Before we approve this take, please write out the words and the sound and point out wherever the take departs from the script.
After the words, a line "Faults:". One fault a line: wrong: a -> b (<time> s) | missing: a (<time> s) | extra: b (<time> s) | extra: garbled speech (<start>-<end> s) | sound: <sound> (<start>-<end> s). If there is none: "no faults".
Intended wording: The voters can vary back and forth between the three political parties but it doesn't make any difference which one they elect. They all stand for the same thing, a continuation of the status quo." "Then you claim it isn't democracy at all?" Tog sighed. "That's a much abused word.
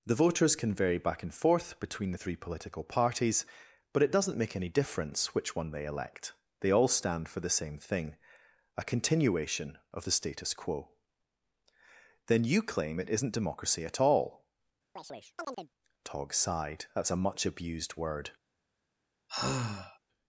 The voters can vary back and forth between the three political parties but it doesn't make any difference which one they elect. They all stand for the same thing, a continuation of the status quo." "Then you claim it isn't democracy at all?" Tog sighed. "That's a much abused word.
Faults:
sound: chirp (15.0-15.7 s)
sound: sigh (19.3-20.0 s)